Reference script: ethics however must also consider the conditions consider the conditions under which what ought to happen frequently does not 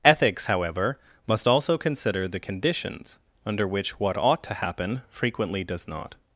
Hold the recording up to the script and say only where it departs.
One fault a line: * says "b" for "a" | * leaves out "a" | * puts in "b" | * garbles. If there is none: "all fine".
* leaves out "consider the conditions"